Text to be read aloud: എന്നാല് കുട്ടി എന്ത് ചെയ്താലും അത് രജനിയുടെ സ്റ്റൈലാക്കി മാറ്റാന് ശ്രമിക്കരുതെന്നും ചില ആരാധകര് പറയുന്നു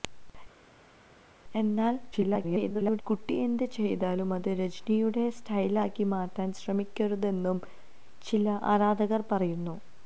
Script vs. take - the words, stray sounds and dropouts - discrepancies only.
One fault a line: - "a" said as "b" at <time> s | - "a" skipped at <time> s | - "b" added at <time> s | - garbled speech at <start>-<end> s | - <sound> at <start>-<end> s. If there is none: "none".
- garbled speech at 2.1-3.0 s